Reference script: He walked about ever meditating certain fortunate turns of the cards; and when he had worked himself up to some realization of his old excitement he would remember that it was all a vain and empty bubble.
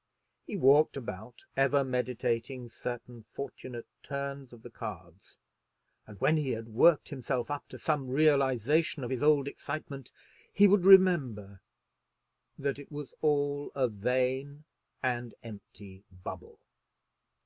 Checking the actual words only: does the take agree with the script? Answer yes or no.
yes